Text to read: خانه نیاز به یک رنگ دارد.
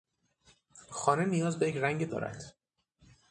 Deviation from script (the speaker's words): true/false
false